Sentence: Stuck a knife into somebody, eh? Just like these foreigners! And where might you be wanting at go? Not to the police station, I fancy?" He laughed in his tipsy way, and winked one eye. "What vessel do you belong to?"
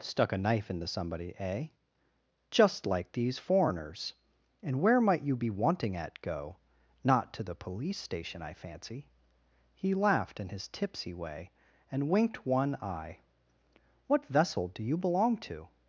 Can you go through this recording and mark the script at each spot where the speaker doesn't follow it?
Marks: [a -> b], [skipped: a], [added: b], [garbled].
Stuck a knife into somebody, eh? Just like these foreigners! And where might you be wanting at go? Not to the police station, I fancy?" He laughed in his tipsy way, and winked one eye. "What vessel do you belong to?"